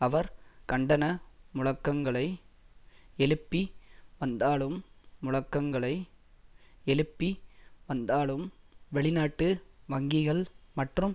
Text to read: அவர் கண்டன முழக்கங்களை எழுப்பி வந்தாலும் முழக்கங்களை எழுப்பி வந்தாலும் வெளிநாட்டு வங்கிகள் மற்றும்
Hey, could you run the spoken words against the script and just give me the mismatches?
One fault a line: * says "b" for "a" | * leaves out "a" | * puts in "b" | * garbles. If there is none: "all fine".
all fine